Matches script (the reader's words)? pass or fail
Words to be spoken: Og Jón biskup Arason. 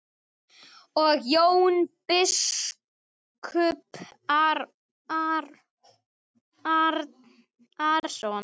pass